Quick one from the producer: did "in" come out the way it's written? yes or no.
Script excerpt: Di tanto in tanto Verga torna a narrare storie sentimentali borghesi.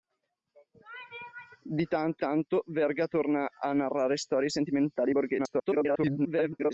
no